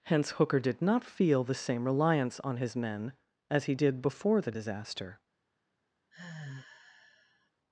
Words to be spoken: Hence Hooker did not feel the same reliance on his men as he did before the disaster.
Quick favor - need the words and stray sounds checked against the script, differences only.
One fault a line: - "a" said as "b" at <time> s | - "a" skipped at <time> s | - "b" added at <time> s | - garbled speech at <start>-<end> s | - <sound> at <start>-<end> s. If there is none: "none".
- sigh at 6.1-7.5 s